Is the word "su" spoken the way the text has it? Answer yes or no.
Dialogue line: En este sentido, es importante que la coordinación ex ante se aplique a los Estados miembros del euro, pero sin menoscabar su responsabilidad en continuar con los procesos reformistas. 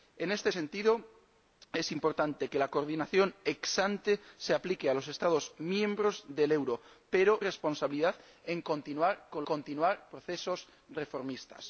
no